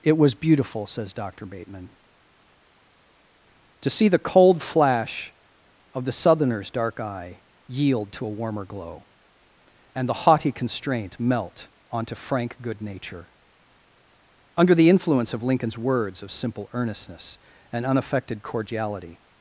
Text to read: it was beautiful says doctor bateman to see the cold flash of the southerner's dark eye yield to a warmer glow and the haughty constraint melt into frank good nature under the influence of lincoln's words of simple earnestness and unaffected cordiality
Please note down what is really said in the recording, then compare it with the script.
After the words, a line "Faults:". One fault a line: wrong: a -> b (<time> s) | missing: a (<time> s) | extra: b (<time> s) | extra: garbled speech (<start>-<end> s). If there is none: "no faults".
it was beautiful says doctor bateman to see the cold flash of the southerner's dark eye yield to a warmer glow and the haughty constraint melt onto frank good nature under the influence of lincoln's words of simple earnestness and unaffected cordiality
Faults:
wrong: into -> onto (11.9 s)